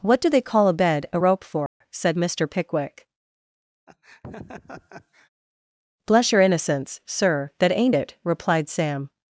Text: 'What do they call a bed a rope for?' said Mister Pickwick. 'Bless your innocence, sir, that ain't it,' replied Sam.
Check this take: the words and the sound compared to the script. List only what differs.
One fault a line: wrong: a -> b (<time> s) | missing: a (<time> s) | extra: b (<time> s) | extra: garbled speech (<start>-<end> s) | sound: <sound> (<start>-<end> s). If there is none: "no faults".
sound: dropout (1.7-1.8 s)
sound: laugh (3.9-5.3 s)